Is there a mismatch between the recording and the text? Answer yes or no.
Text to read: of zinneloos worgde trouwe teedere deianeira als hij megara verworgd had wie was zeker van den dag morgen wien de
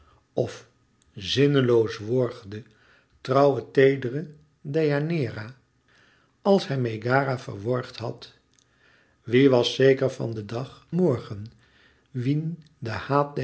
no